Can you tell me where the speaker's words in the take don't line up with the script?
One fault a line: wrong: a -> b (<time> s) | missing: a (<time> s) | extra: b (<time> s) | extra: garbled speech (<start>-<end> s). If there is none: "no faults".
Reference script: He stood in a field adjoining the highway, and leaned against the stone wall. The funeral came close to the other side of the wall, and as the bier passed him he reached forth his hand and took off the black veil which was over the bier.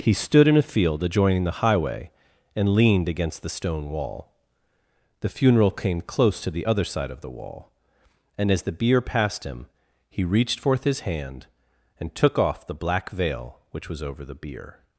no faults